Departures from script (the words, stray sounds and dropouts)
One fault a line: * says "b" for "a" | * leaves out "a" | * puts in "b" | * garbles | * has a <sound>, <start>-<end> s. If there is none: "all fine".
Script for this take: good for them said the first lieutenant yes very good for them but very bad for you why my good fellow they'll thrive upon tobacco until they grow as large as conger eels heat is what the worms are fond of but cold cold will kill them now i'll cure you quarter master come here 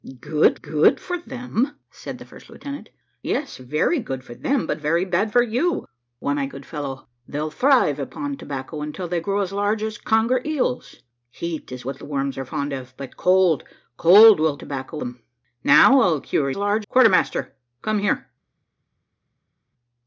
* puts in "good"
* says "tobacco" for "kill"
* says "large" for "you"